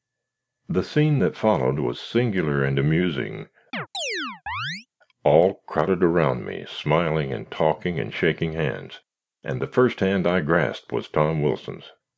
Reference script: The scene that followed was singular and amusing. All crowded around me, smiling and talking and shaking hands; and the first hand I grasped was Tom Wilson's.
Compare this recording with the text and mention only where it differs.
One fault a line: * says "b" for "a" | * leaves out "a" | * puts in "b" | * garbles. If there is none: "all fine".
all fine